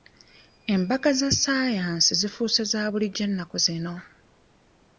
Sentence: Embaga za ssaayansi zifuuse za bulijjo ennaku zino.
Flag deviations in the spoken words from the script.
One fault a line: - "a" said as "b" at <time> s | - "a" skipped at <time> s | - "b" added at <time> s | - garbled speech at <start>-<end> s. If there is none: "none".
none